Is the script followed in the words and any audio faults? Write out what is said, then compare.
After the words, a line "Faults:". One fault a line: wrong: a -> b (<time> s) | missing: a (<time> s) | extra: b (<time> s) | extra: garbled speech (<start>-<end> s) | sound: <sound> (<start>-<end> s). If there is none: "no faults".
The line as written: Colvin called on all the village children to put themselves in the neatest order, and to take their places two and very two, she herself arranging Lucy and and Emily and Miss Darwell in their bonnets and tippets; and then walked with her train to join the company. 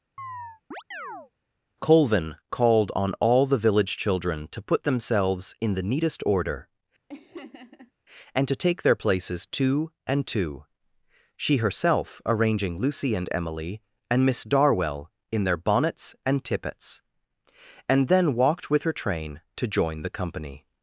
Colvin called on all the village children to put themselves in the neatest order, and to take their places two and two, she herself arranging Lucy and Emily and Miss Darwell in their bonnets and tippets; and then walked with her train to join the company.
Faults:
sound: chirp (0.2-1.3 s)
sound: laugh (7.1-7.9 s)
missing: very (10.2 s)
missing: and (13.3 s)